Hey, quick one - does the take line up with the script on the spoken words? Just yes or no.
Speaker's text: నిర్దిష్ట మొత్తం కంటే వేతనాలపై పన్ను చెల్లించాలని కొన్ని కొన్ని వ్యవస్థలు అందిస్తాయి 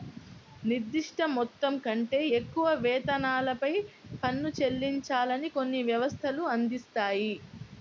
no